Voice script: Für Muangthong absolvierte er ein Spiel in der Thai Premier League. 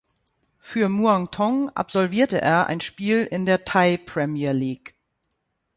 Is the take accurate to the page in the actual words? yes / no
yes